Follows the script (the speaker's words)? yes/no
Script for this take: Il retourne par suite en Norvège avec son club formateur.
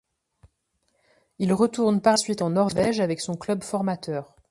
yes